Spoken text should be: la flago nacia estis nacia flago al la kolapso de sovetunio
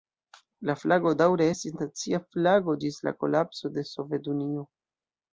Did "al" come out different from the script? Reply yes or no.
yes